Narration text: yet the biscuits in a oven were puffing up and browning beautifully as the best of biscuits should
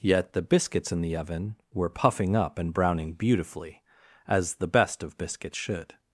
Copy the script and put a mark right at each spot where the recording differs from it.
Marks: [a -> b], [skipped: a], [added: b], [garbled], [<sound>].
yet the biscuits in [a -> the] oven were puffing up and browning beautifully as the best of biscuits should